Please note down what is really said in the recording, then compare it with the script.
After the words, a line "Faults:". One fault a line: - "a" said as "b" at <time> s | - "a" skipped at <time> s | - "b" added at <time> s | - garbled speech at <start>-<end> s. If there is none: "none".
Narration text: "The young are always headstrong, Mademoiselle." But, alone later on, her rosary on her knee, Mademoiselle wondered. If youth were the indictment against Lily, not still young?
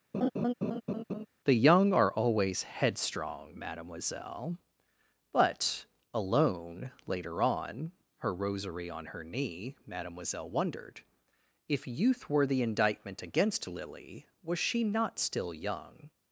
"The young are always headstrong, Mademoiselle." But, alone later on, her rosary on her knee, Mademoiselle wondered. If youth were the indictment against Lily, was she not still young?
Faults:
- "was she" added at 14.4 s